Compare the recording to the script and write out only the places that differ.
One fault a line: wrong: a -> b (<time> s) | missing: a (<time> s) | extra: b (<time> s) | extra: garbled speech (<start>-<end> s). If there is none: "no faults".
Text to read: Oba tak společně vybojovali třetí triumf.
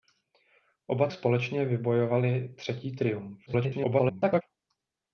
missing: tak (1.1 s)
extra: garbled speech (3.5-4.4 s)